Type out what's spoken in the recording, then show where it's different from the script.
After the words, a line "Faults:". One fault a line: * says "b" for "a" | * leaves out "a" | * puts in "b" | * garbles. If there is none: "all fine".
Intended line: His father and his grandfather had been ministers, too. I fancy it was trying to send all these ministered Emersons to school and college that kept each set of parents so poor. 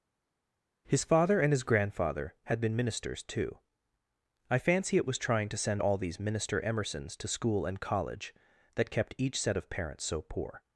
His father and his grandfather had been ministers, too. I fancy it was trying to send all these minister Emersons to school and college that kept each set of parents so poor.
Faults:
* says "minister" for "ministered"